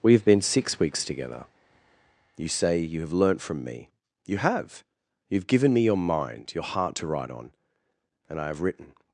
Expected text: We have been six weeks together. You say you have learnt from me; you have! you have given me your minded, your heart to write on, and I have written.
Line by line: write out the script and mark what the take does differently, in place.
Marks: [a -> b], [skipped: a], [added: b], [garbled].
We have been six weeks together. You say you have learnt from me; you have! you have given me your [minded, -> mind] your heart to write on, and I have written.